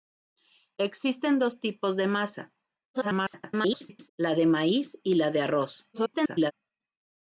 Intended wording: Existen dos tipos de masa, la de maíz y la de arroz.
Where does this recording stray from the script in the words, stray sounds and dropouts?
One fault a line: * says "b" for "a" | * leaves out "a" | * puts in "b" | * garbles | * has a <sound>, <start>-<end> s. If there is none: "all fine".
* garbles
* garbles